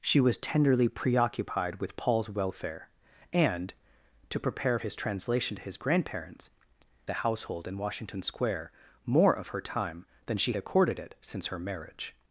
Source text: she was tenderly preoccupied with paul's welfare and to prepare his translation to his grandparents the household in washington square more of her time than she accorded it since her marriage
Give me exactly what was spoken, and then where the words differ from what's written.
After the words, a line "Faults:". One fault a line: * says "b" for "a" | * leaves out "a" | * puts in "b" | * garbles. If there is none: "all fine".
she was tenderly preoccupied with paul's welfare and to prepare his translation to his grandparents the household in washington square more of her time than she accorded it since her marriage
Faults:
all fine